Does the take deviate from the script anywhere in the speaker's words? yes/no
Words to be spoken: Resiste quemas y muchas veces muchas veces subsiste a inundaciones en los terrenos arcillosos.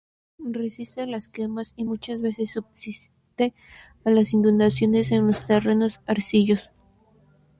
yes